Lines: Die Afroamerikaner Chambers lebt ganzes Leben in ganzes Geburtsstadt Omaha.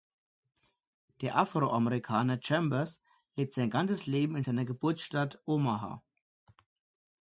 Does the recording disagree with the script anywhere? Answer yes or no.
yes